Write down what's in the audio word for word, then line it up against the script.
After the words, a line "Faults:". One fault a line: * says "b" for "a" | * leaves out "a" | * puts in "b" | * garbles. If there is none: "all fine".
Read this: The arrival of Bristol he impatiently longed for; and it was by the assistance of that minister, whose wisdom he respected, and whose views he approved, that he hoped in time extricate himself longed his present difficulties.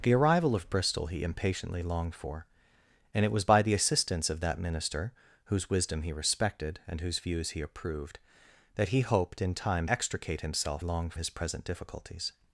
The arrival of Bristol he impatiently longed for; and it was by the assistance of that minister, whose wisdom he respected, and whose views he approved, that he hoped in time extricate himself longed his present difficulties.
Faults:
all fine